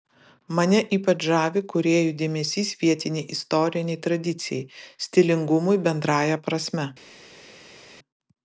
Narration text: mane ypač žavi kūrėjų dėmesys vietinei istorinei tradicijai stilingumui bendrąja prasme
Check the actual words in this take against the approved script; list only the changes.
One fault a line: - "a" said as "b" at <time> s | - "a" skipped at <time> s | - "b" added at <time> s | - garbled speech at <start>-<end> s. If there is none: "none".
none